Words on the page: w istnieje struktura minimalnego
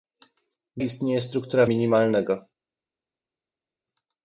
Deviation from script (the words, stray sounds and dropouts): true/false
false